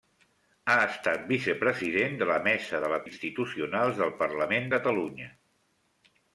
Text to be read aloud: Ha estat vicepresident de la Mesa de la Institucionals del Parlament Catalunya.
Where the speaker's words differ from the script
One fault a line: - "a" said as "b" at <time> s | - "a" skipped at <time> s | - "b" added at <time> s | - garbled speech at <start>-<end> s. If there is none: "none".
none